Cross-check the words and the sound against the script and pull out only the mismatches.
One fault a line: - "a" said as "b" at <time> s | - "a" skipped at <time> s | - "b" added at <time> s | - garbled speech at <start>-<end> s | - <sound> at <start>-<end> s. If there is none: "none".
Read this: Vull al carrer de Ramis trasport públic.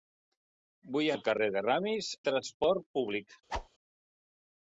- whoosh at 3.5-3.7 s